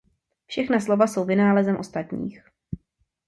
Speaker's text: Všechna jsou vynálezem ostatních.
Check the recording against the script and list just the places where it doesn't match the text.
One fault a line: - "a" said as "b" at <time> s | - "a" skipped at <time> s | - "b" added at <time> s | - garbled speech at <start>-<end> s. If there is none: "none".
- "slova" added at 0.8 s